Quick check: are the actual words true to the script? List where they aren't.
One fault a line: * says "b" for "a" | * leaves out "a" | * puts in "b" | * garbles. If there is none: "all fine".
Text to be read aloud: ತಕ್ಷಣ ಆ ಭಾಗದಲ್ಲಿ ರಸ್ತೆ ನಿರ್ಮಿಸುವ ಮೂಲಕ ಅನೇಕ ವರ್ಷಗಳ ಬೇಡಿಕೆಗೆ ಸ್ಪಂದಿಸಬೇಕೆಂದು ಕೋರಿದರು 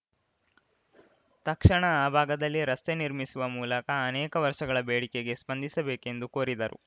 all fine